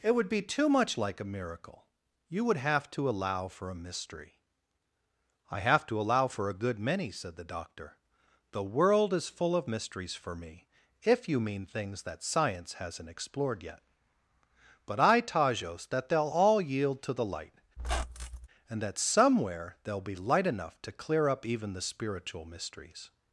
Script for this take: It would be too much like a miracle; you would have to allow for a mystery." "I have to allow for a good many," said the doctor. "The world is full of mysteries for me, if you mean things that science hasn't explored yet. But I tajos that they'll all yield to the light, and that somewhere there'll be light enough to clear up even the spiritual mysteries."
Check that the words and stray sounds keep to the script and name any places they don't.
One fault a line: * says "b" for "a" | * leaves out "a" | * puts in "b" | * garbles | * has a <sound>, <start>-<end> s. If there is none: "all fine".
* has a squeak, 17.8-18.5 s